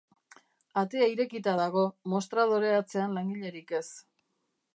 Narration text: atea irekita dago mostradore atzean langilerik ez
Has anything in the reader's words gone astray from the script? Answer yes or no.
no